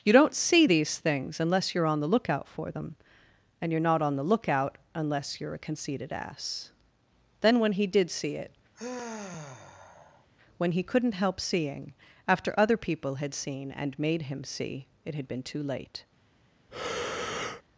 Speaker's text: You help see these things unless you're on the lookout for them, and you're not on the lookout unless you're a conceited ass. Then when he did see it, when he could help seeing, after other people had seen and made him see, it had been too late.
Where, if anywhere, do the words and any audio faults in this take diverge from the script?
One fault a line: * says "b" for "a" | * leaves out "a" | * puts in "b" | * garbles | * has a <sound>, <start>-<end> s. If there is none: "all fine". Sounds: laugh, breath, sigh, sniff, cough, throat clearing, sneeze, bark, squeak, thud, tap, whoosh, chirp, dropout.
* says "don't" for "help"
* has a sigh, 8.7-10.3 s
* says "couldn't" for "could"
* has a breath, 16.7-17.6 s